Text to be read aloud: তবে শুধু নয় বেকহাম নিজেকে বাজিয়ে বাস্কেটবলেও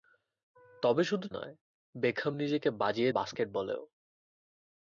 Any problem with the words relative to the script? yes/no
no